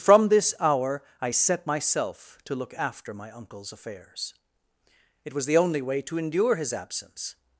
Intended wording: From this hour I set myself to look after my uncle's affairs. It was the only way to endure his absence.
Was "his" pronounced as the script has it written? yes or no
yes